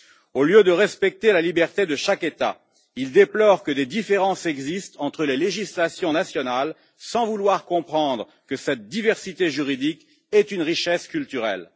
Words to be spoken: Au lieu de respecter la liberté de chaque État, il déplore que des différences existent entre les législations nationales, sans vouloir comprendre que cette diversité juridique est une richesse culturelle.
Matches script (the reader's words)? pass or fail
pass